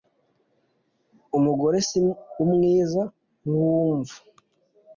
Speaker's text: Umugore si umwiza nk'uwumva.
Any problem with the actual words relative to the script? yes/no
no